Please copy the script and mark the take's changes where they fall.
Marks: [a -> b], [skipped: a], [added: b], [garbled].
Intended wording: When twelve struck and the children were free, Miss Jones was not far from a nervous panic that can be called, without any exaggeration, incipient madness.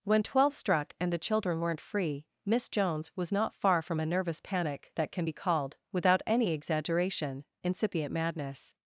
When twelve struck and the children [were -> weren't] free, Miss Jones was not far from a nervous panic that can be called, without any exaggeration, incipient madness.